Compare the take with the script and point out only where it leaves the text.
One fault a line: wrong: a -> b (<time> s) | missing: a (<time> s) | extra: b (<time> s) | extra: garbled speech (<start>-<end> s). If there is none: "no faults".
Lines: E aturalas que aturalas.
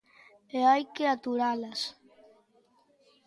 wrong: aturalas -> hai (0.7 s)